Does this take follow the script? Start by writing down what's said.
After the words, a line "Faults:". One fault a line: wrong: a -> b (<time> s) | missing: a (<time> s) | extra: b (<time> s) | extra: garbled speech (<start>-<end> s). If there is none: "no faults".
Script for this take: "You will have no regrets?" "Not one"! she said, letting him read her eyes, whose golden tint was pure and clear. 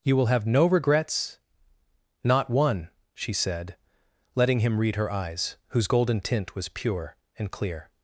"You will have no regrets?" "Not one"! she said, letting him read her eyes, whose golden tint was pure and clear.
Faults:
no faults